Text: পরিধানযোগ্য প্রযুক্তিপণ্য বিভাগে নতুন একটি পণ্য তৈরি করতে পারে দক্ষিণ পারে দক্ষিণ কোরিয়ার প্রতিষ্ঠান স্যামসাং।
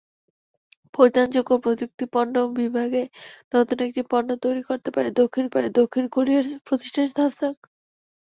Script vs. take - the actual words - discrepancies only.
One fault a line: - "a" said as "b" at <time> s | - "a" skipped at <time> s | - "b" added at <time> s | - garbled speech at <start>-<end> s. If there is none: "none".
none